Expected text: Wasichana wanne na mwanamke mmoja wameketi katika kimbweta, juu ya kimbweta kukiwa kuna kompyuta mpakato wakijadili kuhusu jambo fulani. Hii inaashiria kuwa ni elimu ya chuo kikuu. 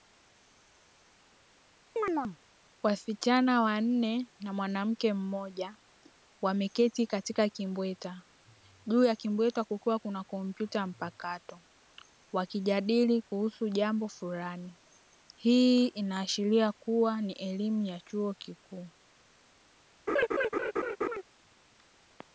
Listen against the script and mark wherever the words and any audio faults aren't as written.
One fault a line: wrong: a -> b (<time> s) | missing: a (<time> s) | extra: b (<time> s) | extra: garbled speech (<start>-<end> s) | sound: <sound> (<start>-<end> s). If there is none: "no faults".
sound: chirp (2.0-2.4 s)
sound: laugh (20.1-21.2 s)